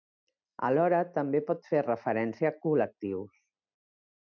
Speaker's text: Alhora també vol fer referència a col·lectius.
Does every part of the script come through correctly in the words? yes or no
no